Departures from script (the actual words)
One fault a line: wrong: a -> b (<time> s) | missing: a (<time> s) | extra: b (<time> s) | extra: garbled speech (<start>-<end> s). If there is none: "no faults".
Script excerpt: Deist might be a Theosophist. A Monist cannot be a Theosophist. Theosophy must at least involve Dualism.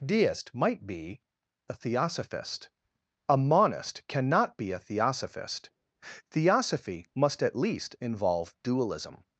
no faults